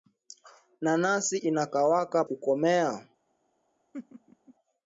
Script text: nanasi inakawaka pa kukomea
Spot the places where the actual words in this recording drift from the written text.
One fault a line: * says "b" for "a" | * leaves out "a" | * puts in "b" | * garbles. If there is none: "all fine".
* leaves out "pa"